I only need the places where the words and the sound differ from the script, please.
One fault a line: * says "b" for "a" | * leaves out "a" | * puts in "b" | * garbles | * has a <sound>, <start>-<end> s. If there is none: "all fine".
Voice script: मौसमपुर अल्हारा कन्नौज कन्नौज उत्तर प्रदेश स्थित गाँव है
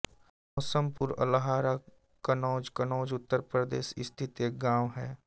* has a dropout, 1.0-1.0 s
* puts in "एक"